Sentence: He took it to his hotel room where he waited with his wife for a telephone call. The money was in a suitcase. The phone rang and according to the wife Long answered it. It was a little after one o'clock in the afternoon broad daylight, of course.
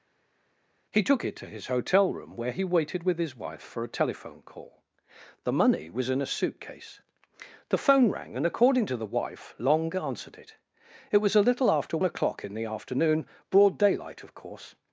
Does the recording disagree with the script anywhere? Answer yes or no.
yes